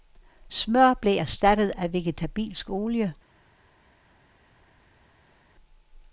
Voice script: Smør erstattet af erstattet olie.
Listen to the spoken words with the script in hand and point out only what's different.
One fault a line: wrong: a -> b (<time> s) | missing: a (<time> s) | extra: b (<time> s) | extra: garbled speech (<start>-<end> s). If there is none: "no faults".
extra: blev (0.9 s)
wrong: erstattet -> vegetabilsk (1.9 s)